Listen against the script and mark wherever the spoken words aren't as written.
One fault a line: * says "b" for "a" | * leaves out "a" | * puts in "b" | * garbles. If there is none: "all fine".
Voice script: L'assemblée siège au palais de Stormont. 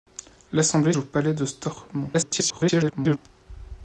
* leaves out "siège"
* garbles